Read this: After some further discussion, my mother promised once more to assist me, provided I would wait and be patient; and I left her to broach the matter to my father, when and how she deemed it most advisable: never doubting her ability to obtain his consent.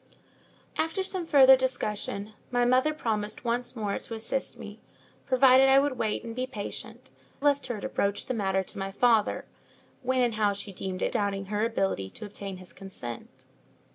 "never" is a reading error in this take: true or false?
true